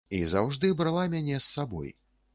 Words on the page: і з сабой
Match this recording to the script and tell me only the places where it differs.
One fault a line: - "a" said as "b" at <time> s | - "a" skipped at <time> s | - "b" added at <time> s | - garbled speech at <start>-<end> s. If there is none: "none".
- "заўжды брала мяне" added at 0.3 s